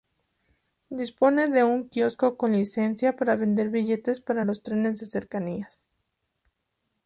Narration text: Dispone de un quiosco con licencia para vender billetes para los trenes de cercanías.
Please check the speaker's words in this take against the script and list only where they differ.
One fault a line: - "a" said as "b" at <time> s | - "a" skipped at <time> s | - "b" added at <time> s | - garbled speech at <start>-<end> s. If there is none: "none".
none